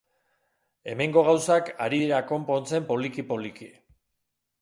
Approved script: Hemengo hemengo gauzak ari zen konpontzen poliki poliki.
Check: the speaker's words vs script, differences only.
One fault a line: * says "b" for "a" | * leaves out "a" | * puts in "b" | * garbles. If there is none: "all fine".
* leaves out "hemengo"
* says "dira" for "zen"